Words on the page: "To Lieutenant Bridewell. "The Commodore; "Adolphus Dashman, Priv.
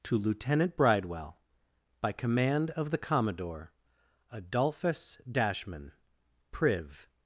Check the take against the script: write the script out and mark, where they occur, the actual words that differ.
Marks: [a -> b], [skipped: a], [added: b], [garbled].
"To Lieutenant Bridewell. [added: By command of] "The Commodore; "Adolphus Dashman, Priv.